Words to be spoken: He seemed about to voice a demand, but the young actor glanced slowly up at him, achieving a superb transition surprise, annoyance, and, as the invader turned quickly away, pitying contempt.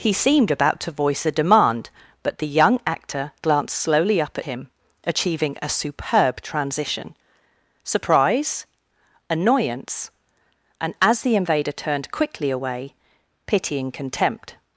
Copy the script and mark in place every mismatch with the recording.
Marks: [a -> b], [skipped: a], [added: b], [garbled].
He seemed about to voice a demand, but the young actor glanced slowly up [skipped: at] him, achieving a superb transition surprise, annoyance, and, as the invader turned quickly away, pitying contempt.